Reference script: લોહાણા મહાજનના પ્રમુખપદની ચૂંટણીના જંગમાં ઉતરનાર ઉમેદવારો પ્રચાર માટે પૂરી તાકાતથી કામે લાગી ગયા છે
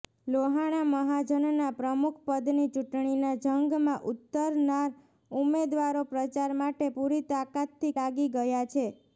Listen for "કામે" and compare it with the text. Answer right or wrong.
wrong